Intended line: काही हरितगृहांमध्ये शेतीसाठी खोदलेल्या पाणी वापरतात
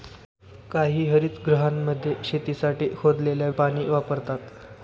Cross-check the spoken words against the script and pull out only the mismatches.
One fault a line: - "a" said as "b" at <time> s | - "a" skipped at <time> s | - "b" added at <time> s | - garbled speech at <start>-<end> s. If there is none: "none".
none